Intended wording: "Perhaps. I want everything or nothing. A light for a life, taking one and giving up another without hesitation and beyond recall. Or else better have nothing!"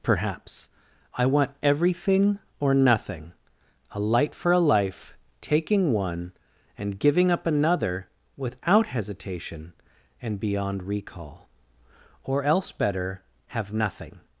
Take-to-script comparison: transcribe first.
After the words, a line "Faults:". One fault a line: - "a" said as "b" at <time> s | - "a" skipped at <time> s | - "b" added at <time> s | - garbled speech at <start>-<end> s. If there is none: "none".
"Perhaps. I want everything or nothing. A light for a life, taking one and giving up another without hesitation and beyond recall. Or else better have nothing!"
Faults:
none